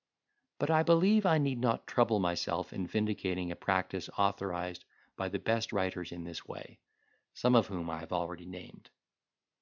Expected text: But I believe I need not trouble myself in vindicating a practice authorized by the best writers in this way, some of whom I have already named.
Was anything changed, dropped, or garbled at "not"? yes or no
no